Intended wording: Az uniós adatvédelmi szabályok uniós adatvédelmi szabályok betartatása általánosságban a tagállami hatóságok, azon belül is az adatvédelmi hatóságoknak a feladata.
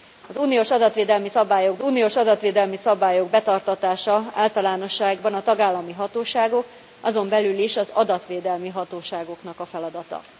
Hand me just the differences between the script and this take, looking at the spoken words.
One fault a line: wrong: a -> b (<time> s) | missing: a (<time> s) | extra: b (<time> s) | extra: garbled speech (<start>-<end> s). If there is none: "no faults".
no faults